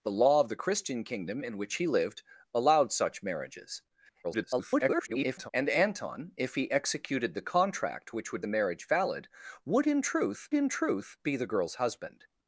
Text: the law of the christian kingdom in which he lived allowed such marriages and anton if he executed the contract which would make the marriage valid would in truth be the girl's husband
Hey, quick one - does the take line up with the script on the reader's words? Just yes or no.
no